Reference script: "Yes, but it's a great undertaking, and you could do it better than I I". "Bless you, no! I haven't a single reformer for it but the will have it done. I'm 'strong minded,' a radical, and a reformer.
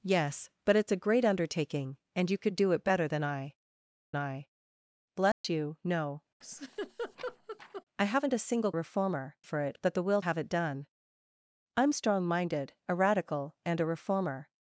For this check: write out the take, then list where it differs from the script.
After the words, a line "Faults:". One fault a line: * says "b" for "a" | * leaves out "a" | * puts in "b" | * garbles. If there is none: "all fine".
"Yes, but it's a great undertaking, and you could do it better than I I". "Bless you, no! I haven't a single reformer for it but the will have it done. I'm 'strong minded,' a radical, and a reformer.
Faults:
all fine